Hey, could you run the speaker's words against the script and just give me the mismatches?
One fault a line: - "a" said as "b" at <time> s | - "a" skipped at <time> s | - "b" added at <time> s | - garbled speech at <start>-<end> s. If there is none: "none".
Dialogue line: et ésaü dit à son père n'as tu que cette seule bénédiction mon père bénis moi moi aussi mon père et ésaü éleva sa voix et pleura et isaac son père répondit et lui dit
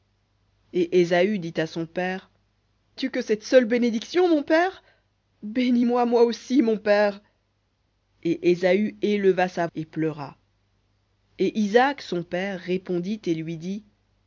- "n'as" skipped at 2.3 s
- "voix" skipped at 9.7 s